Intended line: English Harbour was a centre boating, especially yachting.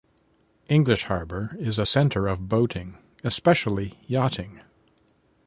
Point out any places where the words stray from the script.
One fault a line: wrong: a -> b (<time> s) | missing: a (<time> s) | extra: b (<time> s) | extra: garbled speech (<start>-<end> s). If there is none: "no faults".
wrong: was -> is (1.6 s)
extra: of (2.3 s)